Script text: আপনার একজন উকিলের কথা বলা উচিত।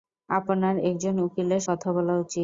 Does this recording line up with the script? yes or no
yes